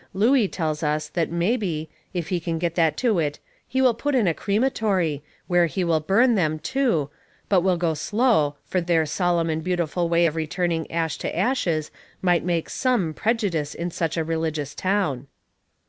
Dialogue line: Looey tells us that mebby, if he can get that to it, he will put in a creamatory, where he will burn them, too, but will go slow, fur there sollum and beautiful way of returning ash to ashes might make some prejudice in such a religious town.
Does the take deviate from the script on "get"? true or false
false